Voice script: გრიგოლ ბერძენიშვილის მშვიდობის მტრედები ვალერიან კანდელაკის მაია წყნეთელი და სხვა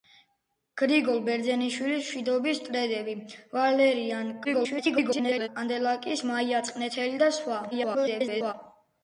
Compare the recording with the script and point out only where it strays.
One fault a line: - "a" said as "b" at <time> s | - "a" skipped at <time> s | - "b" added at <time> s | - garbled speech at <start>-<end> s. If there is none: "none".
- garbled speech at 4.4-5.5 s
- garbled speech at 7.7-8.5 s